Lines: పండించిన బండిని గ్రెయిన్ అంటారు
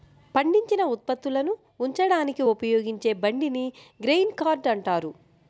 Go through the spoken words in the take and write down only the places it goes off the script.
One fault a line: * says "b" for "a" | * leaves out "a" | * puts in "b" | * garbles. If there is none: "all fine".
* puts in "ఉత్పత్తులను ఉంచడానికి ఉపయోగించే"
* puts in "కార్ట్"